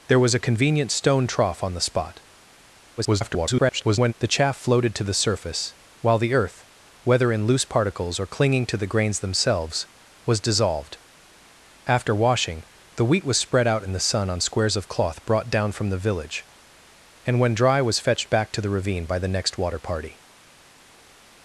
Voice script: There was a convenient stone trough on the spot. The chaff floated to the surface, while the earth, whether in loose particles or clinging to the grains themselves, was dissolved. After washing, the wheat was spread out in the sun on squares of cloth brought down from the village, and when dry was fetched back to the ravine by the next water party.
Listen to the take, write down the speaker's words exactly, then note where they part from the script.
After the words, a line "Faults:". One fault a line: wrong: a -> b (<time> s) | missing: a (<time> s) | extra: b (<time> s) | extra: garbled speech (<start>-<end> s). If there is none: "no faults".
There was a convenient stone trough on the spot. [garbled] The chaff floated to the surface, while the earth, whether in loose particles or clinging to the grains themselves, was dissolved. After washing, the wheat was spread out in the sun on squares of cloth brought down from the village, and when dry was fetched back to the ravine by the next water party.
Faults:
extra: garbled speech (3.0-4.1 s)